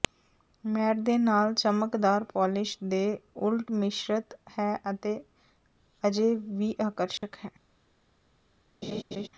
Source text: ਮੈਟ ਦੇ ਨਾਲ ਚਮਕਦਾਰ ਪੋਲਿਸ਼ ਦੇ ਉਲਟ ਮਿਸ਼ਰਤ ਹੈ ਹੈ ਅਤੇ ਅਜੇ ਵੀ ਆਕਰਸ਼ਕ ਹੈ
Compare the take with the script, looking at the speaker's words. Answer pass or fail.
fail